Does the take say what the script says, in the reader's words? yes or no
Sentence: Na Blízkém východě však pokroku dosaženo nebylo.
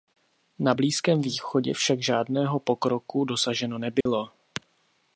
no